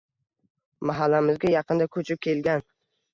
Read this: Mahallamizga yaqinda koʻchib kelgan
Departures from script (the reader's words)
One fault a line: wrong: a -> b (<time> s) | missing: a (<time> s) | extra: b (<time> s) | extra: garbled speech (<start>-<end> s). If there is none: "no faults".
no faults